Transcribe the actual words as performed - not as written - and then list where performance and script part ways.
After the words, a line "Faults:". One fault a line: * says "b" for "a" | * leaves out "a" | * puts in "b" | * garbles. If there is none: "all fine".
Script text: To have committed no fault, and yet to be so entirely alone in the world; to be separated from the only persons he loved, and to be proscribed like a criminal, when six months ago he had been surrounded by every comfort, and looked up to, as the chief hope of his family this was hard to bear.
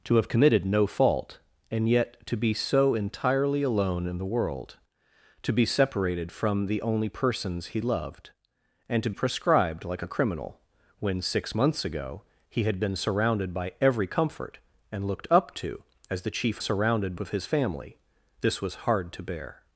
To have committed no fault, and yet to be so entirely alone in the world; to be separated from the only persons he loved, and to proscribed like a criminal, when six months ago he had been surrounded by every comfort, and looked up to, as the chief surrounded of his family this was hard to bear.
Faults:
* leaves out "be"
* says "surrounded" for "hope"